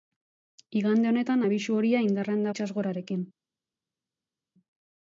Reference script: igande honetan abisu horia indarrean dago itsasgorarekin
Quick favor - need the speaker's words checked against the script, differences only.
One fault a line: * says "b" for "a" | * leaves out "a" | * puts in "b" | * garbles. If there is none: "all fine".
* leaves out "dago"